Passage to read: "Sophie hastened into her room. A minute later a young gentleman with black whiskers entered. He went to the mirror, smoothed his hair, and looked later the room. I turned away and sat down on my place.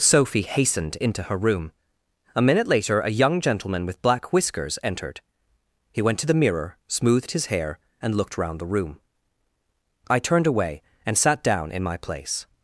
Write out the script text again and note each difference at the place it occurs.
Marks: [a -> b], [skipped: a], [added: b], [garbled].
"Sophie hastened into her room. A minute later a young gentleman with black whiskers entered. He went to the mirror, smoothed his hair, and looked [later -> round] the room. I turned away and sat down [on -> in] my place.